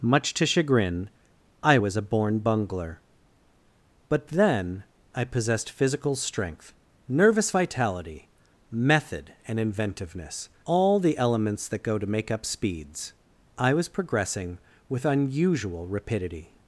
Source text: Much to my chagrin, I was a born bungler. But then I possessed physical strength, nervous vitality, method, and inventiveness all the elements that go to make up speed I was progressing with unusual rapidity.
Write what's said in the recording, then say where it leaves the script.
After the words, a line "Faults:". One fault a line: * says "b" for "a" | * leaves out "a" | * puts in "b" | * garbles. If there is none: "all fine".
Much to chagrin, I was a born bungler. But then I possessed physical strength, nervous vitality, method, and inventiveness all the elements that go to make up speeds I was progressing with unusual rapidity.
Faults:
* leaves out "my"
* says "speeds" for "speed"